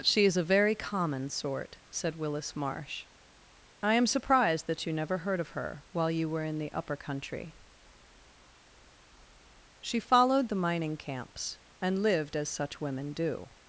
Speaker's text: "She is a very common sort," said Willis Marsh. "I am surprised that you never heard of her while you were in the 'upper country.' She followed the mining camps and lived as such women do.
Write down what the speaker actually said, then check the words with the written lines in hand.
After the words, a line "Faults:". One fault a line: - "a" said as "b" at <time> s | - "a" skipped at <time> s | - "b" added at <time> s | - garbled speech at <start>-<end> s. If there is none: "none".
"She is a very common sort," said Willis Marsh. "I am surprised that you never heard of her while you were in the 'upper country.' She followed the mining camps and lived as such women do.
Faults:
none